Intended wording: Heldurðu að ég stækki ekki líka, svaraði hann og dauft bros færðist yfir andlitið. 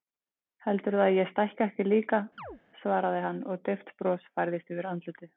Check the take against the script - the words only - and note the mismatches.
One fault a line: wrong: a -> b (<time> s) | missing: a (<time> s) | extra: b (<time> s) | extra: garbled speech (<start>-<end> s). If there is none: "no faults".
no faults